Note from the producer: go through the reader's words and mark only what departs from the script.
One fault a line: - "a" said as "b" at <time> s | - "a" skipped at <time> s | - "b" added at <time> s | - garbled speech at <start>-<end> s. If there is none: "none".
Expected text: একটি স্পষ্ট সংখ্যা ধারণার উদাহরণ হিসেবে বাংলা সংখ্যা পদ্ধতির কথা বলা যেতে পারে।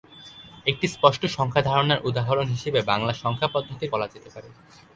- "কথা" skipped at 3.9 s